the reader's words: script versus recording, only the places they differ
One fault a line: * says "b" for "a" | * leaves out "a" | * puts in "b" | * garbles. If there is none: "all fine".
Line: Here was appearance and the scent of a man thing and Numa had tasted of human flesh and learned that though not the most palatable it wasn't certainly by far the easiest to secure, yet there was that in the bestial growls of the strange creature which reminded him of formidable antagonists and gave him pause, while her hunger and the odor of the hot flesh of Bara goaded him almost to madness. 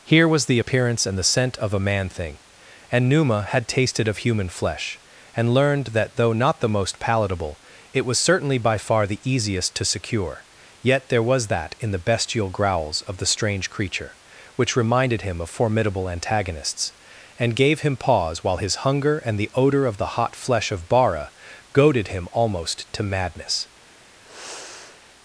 * puts in "the"
* says "was" for "wasn't"
* says "his" for "her"